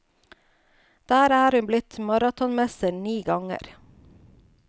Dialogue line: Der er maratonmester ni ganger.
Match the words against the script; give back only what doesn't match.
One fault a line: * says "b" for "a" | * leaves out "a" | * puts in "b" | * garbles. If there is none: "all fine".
* puts in "hun blitt"